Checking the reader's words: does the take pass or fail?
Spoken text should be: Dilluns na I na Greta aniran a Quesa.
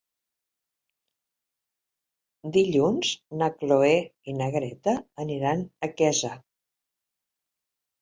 fail